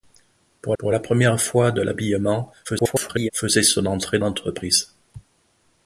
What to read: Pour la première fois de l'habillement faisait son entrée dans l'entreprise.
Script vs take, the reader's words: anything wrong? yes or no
yes